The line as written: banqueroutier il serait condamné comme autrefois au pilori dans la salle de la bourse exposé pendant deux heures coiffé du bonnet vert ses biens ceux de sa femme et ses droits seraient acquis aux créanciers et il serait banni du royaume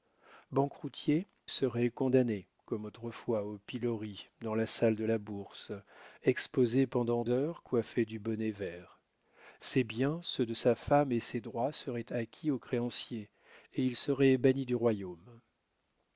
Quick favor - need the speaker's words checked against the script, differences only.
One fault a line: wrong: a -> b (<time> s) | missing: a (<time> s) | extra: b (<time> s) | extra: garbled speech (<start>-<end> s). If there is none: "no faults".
missing: il (1.3 s)
missing: deux (7.2 s)